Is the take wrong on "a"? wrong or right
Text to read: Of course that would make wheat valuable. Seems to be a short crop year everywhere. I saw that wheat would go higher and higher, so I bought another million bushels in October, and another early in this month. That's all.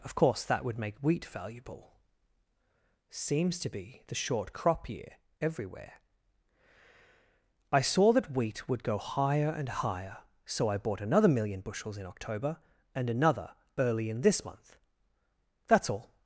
wrong